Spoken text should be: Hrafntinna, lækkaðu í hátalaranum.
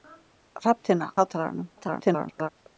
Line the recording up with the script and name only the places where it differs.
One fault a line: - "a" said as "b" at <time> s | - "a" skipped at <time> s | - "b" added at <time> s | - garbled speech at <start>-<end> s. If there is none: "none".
- "lækkaðu" skipped at 1.1 s
- garbled speech at 1.8-2.5 s